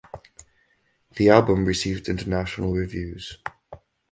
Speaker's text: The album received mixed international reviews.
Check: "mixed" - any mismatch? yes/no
yes